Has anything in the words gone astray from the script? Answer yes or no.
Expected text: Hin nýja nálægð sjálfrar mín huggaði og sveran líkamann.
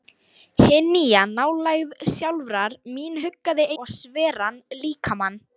no